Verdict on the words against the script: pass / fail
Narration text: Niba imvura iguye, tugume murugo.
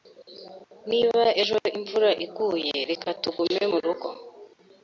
fail